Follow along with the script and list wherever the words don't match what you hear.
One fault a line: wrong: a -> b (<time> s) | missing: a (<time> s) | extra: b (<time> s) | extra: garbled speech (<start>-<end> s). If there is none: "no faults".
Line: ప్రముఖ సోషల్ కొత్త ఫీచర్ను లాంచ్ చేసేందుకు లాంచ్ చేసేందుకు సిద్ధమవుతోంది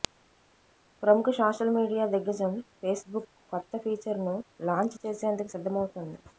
extra: మీడియా దిగ్గజం ఫేస్బుక్ (1.8 s)
missing: లాంచ్ చేసేందుకు (5.5 s)